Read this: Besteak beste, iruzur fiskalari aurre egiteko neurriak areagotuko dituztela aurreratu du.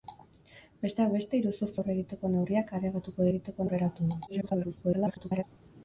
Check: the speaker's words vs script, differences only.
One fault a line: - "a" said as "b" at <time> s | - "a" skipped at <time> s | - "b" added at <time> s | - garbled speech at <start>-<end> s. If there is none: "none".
- "fiskalari" skipped at 1.7 s
- "dituztela" said as "egiteko" at 3.3 s
- garbled speech at 4.3-5.4 s